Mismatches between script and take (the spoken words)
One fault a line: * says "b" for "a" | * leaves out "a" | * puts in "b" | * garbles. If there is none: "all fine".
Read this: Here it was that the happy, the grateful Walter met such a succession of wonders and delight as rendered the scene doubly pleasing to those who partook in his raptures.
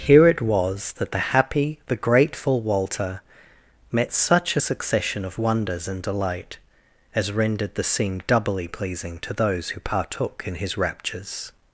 all fine